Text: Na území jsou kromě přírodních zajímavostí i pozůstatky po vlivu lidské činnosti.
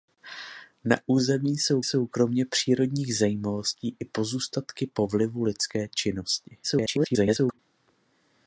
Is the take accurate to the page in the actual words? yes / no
no